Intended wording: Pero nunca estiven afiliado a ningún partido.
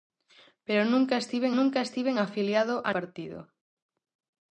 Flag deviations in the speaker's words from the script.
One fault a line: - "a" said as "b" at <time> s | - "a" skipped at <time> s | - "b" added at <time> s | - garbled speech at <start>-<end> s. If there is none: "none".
- "nunca estiven" added at 1.5 s
- "ningún" skipped at 2.9 s